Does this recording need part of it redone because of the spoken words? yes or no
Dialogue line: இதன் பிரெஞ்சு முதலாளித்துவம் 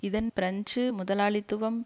no